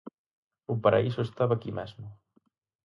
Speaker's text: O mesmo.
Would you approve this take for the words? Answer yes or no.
no